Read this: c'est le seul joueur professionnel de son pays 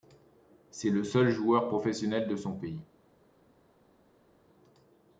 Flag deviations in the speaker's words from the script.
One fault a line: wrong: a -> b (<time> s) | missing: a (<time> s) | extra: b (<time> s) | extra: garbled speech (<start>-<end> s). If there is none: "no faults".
no faults